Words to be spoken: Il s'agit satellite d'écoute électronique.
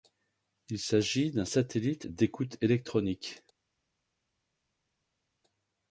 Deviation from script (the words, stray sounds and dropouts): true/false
true